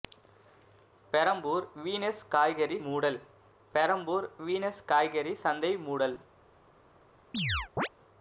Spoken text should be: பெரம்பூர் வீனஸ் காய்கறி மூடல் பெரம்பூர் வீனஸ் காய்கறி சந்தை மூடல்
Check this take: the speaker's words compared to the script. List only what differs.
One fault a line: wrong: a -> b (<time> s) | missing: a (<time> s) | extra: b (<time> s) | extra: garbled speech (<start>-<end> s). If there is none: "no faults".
no faults